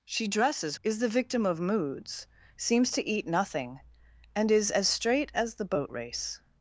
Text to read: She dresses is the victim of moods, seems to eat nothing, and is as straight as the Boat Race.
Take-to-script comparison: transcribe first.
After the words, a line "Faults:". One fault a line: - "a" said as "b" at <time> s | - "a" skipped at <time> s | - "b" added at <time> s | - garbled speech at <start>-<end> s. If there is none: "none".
She dresses is the victim of moods, seems to eat nothing, and is as straight as the Boat Race.
Faults:
none